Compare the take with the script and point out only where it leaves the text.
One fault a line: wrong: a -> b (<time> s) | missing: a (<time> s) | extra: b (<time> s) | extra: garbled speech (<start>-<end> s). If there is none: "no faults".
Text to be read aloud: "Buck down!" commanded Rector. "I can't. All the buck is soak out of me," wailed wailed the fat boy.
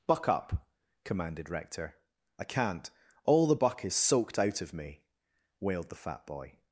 wrong: down -> up (0.3 s)
wrong: soak -> soaked (4.0 s)
missing: wailed (5.9 s)